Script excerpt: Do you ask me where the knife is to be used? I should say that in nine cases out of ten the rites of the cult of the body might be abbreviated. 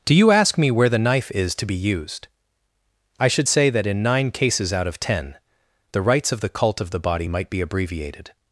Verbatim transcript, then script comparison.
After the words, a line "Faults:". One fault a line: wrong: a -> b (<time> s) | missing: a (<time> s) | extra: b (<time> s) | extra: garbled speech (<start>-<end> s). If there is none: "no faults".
Do you ask me where the knife is to be used? I should say that in nine cases out of ten the rites of the cult of the body might be abbreviated.
Faults:
no faults